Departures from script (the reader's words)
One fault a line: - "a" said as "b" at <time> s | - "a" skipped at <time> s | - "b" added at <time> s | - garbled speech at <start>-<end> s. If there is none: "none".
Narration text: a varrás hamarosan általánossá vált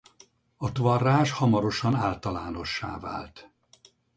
none